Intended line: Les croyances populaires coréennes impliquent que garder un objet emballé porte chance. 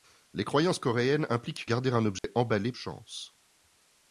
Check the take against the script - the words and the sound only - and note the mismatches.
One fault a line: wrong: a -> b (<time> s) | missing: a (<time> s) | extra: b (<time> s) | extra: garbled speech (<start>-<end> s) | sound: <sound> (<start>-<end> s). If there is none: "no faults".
missing: populaires (0.8 s)
missing: que (1.7 s)
sound: dropout (2.2-2.2 s)
missing: porte (2.7 s)